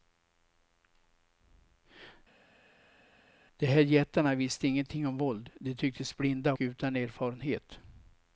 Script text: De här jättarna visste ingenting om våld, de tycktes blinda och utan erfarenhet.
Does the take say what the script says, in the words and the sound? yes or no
no